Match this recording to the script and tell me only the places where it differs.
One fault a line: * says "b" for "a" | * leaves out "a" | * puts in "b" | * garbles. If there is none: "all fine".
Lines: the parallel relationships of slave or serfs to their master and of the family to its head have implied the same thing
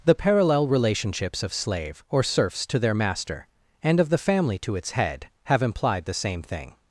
all fine